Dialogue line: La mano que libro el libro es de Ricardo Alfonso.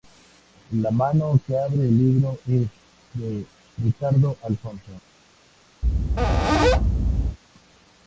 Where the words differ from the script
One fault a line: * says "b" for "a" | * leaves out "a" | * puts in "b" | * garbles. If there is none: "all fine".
* says "abre" for "libro"